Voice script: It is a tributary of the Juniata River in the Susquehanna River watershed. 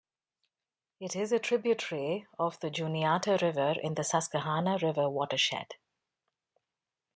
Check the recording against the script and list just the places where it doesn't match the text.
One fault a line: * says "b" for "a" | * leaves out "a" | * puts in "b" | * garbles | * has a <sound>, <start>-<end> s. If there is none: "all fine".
all fine